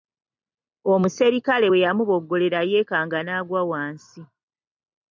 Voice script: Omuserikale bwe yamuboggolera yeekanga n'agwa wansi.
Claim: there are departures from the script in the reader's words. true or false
false